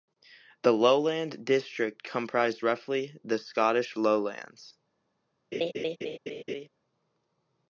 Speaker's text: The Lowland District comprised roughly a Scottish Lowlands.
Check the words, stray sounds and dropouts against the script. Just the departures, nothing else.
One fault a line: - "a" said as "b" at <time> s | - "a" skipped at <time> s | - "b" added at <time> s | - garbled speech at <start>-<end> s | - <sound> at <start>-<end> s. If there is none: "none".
- "a" said as "the" at 3.2 s
- laugh at 5.5-6.7 s